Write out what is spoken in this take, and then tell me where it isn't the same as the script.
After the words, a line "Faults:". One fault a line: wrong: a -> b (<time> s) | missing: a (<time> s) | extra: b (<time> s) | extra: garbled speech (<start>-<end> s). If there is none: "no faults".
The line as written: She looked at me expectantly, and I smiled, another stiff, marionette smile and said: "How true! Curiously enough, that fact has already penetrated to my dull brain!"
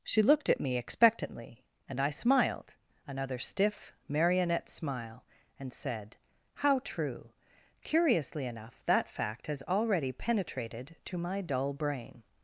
She looked at me expectantly, and I smiled, another stiff, marionette smile and said: "How true! Curiously enough, that fact has already penetrated to my dull brain!"
Faults:
no faults